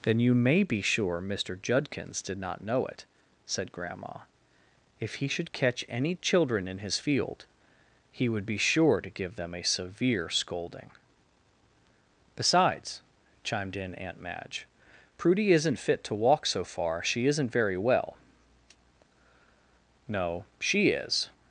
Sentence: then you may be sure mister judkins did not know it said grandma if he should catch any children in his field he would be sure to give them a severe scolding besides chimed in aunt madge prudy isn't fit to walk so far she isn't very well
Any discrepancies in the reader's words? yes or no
yes